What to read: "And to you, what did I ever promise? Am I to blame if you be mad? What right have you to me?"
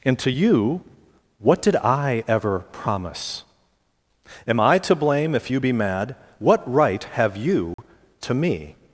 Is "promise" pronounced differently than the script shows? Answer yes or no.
no